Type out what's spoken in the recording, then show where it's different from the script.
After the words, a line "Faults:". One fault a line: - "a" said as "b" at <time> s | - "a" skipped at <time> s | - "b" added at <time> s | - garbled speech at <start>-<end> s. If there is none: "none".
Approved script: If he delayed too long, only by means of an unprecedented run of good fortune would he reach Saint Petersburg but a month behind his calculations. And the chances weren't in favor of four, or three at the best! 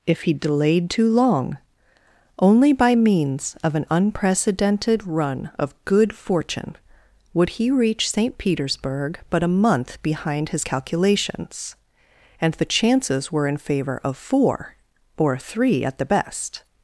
If he delayed too long, only by means of an unprecedented run of good fortune would he reach Saint Petersburg but a month behind his calculations. And the chances were in favor of four, or three at the best!
Faults:
- "weren't" said as "were" at 13.3 s